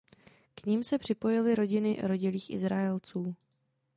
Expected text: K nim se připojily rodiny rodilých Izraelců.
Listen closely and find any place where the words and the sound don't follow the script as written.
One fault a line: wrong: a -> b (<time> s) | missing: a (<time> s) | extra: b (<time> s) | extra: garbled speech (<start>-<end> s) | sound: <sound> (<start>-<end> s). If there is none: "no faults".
no faults